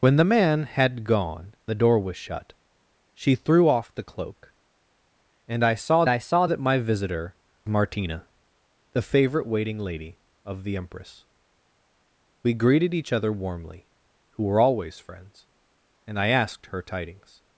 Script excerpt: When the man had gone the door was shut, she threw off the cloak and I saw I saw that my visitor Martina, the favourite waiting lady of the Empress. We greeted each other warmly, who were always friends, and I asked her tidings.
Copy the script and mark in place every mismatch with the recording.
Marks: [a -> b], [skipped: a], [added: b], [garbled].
When the man had gone the door was shut, she threw off the cloak and I saw I saw that my visitor Martina, the favourite waiting lady of the Empress. We greeted each other warmly, who were always friends, and I asked her tidings.